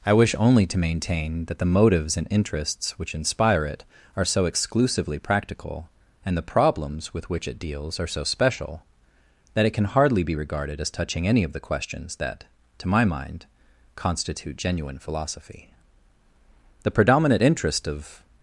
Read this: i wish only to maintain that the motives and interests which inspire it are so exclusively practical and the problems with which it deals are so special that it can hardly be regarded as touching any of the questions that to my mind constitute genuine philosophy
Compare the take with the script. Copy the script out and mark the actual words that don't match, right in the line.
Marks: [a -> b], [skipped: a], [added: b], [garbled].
i wish only to maintain that the motives and interests which inspire it are so exclusively practical and the problems with which it deals are so special that it can hardly be regarded as touching any of the questions that to my mind constitute genuine philosophy [added: the predominant interest of]